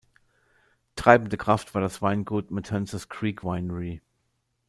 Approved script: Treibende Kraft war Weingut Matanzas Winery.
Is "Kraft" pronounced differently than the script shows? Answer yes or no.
no